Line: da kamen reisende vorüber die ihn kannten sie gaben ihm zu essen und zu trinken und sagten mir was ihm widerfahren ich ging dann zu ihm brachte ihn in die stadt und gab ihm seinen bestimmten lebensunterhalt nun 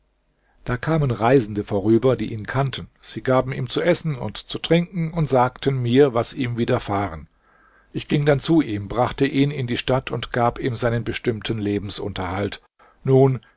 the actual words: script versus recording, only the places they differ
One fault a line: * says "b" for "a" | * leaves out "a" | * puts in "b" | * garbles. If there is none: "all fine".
all fine